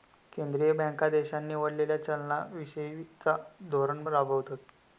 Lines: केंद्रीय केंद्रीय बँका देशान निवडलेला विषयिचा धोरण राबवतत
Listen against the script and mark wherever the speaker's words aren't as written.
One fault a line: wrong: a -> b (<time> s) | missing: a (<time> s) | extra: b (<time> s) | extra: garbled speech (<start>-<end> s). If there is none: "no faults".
missing: केंद्रीय (0.7 s)
extra: चलना (2.0 s)